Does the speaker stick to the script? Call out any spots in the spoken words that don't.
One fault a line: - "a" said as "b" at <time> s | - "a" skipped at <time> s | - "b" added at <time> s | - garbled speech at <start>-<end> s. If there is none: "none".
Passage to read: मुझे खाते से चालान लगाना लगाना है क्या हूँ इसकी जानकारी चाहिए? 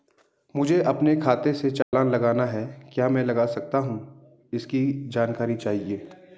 - "अपने" added at 0.8 s
- "लगाना" skipped at 2.5 s
- "मैं लगा सकता" added at 3.1 s